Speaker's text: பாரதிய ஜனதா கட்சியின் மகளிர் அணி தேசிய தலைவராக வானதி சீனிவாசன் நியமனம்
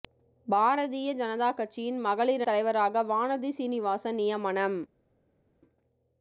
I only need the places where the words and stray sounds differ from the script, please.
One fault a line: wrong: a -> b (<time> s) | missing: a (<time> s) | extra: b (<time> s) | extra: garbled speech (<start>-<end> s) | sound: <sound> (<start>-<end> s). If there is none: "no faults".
missing: அணி தேசிய (2.4 s)